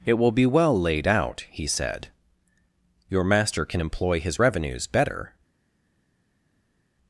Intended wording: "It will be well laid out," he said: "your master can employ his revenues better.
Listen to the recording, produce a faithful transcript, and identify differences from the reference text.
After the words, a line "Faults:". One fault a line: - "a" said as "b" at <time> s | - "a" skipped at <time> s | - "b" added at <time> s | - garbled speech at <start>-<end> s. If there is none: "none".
"It will be well laid out," he said: "your master can employ his revenues better.
Faults:
none